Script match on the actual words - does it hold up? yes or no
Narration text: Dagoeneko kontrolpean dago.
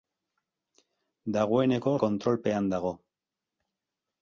yes